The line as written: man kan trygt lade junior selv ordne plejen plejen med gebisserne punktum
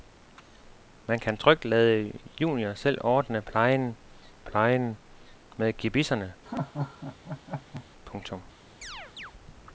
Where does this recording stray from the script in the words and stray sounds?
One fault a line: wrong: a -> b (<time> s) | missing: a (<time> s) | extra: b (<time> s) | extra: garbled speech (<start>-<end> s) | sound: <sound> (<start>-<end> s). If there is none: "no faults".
sound: laugh (6.4-7.8 s)
sound: chirp (8.8-9.3 s)